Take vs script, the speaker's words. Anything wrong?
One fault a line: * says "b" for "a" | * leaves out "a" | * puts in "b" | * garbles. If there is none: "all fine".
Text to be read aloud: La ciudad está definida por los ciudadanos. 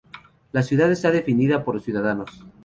all fine